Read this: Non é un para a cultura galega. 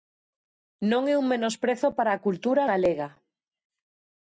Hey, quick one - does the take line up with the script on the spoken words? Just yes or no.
no